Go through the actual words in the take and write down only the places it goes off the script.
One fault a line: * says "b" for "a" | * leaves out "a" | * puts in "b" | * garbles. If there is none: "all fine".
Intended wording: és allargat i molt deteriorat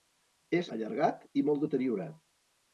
all fine